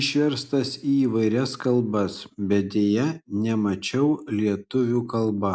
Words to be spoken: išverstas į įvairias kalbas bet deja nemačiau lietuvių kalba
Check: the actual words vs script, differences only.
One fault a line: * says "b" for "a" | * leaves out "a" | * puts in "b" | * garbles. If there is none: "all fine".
all fine